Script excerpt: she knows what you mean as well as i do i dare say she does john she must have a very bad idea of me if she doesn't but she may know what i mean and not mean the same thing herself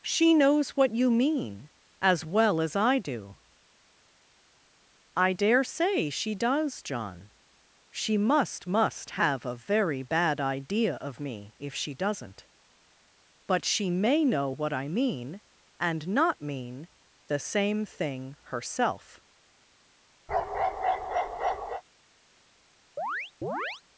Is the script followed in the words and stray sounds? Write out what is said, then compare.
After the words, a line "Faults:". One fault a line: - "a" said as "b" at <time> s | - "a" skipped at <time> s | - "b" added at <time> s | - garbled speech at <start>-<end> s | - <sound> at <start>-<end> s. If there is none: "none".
she knows what you mean as well as i do i dare say she does john she must must have a very bad idea of me if she doesn't but she may know what i mean and not mean the same thing herself
Faults:
- "must" added at 8.6 s
- bark at 20.3-21.8 s
- chirp at 23.0-23.8 s